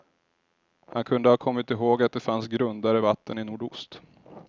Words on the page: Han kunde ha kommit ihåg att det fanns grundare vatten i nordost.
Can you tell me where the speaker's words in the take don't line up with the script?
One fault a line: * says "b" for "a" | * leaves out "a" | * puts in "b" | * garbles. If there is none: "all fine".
all fine